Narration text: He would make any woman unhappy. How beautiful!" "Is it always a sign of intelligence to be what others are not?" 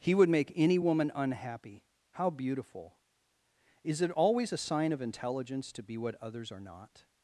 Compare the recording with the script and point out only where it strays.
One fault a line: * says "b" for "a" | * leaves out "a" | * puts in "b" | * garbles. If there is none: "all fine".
all fine